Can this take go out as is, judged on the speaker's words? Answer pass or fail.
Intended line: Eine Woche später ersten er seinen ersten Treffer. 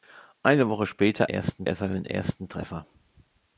pass